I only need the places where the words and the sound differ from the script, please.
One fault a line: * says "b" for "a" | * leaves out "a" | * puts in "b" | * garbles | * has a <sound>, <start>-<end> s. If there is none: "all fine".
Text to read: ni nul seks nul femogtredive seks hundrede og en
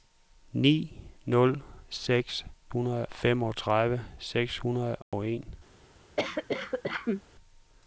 * says "hundrede" for "nul"
* has a dropout, 5.0-5.1 s
* has a cough, 6.2-7.2 s